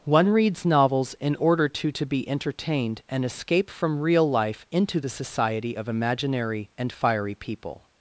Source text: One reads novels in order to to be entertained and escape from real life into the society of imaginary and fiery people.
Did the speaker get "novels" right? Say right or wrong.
right